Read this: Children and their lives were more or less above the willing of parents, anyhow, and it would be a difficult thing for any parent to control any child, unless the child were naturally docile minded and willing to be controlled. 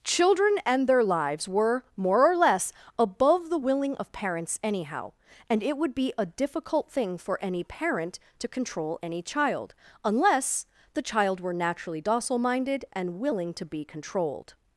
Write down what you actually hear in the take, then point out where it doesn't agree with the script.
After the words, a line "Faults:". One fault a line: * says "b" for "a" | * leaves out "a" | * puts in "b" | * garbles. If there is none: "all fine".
Children and their lives were more or less above the willing of parents, anyhow, and it would be a difficult thing for any parent to control any child, unless the child were naturally docile minded and willing to be controlled.
Faults:
all fine